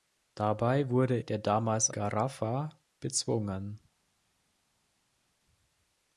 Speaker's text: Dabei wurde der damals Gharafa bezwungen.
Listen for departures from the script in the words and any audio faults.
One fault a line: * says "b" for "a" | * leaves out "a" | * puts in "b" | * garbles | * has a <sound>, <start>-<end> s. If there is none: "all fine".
all fine